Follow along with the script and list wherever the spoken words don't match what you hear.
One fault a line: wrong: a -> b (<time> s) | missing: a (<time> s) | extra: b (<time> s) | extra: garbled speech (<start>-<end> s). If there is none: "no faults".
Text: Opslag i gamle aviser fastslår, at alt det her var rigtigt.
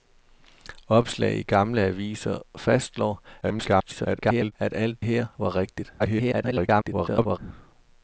extra: garbled speech (3.4-4.5 s)
missing: det (5.1 s)
extra: garbled speech (6.0-7.4 s)